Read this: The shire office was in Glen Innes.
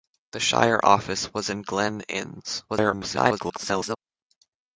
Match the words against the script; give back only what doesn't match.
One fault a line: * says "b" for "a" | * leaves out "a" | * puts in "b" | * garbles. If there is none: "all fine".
* garbles